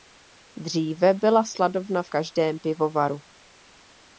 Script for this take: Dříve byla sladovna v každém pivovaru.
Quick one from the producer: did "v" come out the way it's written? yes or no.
yes